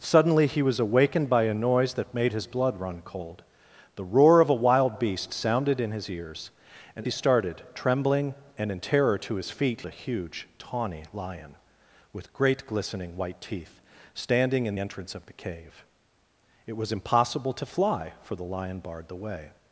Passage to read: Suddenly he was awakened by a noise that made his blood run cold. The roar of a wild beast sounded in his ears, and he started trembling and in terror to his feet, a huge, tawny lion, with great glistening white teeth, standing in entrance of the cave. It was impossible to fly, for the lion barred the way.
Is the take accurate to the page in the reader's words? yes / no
yes